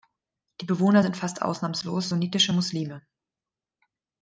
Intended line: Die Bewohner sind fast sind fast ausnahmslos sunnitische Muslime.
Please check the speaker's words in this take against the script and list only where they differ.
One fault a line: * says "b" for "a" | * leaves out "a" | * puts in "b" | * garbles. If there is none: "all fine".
* leaves out "sind fast"